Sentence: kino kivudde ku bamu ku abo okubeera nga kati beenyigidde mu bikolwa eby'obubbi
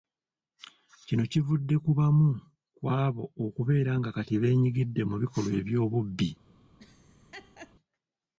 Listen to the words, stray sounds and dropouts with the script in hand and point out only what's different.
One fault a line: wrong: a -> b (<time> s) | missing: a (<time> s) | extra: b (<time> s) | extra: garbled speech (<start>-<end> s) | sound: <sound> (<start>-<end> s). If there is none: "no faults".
sound: laugh (6.8-7.8 s)